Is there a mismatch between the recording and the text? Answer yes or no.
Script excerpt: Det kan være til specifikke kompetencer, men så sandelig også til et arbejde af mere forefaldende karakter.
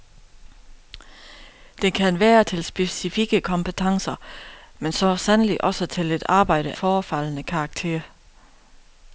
yes